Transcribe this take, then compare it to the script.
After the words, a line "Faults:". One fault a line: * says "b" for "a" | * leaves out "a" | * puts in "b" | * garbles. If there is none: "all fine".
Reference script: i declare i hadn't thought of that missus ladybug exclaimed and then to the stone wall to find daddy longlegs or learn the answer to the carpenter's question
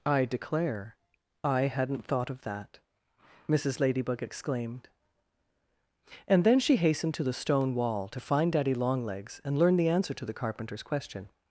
i declare i hadn't thought of that missus ladybug exclaimed and then she hastened to the stone wall to find daddy longlegs and learn the answer to the carpenter's question
Faults:
* puts in "she hastened"
* says "and" for "or"